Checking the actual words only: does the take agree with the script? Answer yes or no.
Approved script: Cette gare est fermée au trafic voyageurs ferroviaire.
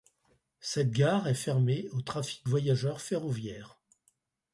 yes